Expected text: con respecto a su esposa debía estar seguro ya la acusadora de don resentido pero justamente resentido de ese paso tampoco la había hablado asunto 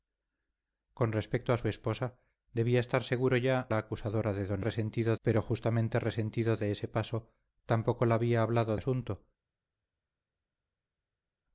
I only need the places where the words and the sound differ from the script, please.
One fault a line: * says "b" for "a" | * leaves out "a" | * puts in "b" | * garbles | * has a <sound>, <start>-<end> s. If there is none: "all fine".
all fine